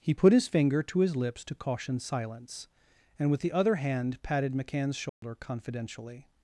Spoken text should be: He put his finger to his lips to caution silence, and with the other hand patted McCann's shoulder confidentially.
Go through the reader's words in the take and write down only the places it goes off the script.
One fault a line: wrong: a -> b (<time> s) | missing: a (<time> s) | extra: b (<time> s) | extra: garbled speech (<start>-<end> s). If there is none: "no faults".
no faults